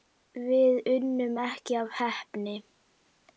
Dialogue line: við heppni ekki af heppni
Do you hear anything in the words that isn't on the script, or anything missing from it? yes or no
yes